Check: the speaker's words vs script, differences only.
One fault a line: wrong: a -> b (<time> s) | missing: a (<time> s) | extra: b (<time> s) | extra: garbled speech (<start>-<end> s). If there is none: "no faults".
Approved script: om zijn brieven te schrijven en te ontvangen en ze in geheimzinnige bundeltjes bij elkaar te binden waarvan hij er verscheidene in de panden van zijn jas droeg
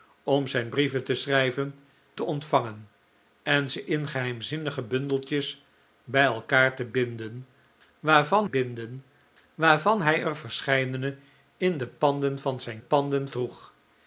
missing: en (1.8 s)
extra: binden waarvan (8.4 s)
wrong: jas -> panden (12.8 s)